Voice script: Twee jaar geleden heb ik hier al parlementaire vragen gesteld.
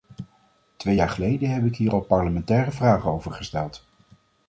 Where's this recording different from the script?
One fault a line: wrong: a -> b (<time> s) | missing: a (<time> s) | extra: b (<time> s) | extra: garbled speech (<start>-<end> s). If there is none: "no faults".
extra: over (3.1 s)